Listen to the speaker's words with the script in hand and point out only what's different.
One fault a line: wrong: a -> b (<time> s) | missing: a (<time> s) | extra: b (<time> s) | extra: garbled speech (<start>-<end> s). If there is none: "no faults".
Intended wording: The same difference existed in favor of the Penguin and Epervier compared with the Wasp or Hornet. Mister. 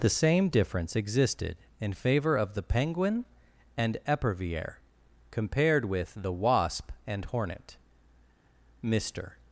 wrong: or -> and (7.1 s)